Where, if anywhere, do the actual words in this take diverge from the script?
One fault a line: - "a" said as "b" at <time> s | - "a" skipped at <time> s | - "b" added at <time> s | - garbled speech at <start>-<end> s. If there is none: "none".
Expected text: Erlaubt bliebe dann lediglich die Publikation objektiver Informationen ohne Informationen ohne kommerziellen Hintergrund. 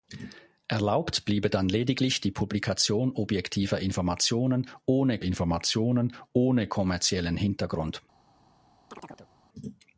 none